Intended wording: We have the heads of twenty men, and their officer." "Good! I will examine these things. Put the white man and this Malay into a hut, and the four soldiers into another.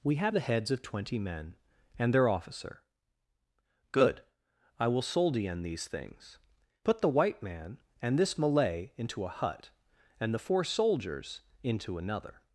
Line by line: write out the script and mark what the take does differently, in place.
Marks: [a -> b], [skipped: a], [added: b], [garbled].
We have the heads of twenty men, and their officer." "Good! I will [examine -> soldien] these things. Put the white man and this Malay into a hut, and the four soldiers into another.